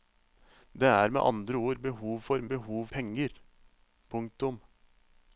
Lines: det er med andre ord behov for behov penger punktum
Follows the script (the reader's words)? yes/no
yes